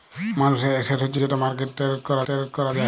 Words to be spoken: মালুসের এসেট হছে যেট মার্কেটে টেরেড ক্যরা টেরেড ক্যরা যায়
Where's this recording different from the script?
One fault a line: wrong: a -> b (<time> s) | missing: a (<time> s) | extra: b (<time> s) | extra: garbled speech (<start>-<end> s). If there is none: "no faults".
no faults